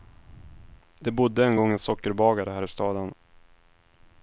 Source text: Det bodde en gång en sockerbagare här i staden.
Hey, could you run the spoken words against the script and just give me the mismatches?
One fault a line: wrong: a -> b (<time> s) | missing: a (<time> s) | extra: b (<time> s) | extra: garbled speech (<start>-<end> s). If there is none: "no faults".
no faults